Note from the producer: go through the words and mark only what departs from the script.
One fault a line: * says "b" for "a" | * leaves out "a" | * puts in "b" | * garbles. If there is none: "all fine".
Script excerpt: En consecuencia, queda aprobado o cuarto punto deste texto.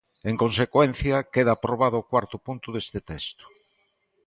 all fine